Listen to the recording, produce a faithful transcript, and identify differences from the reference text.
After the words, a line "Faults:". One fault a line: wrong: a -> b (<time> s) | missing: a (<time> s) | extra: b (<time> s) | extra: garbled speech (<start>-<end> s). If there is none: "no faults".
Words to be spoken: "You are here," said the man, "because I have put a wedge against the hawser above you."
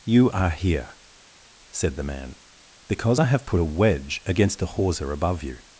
"You are here," said the man, "because I have put a wedge against the hawser above you."
Faults:
no faults